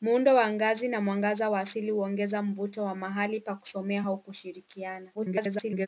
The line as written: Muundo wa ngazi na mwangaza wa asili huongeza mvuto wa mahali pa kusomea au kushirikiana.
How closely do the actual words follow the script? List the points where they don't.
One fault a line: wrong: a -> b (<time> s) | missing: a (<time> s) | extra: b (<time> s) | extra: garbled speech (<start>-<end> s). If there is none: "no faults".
extra: garbled speech (5.1-5.9 s)